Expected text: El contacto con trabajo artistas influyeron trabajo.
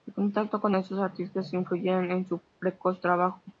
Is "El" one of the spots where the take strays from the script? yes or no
no